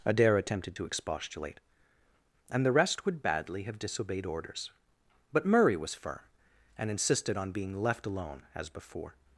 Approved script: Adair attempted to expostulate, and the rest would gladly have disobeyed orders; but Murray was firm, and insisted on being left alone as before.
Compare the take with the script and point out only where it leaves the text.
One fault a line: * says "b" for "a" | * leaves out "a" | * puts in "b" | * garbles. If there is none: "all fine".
* says "badly" for "gladly"